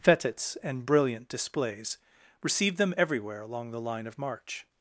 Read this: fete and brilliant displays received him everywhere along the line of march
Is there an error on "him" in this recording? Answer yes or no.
yes